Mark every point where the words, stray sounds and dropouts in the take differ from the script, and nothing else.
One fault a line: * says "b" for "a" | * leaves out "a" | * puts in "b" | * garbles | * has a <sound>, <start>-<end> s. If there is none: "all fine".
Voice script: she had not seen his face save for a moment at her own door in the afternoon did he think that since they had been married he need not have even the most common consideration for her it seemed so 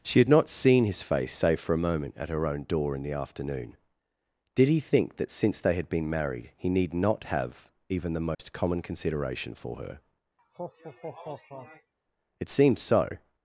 * has a dropout, 8.3-8.4 s
* has a laugh, 10.4-11.9 s